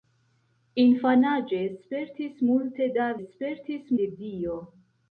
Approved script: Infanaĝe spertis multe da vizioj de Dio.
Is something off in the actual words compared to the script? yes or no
yes